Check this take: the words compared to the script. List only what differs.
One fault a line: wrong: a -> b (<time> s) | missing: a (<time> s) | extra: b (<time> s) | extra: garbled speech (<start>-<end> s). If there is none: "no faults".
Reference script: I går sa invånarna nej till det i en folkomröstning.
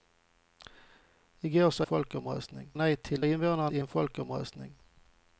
wrong: invånarna -> folkomröstning (1.8 s)
wrong: det -> invånarna (3.2 s)